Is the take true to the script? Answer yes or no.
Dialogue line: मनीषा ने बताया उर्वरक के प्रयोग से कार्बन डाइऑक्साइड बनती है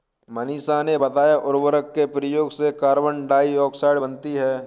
yes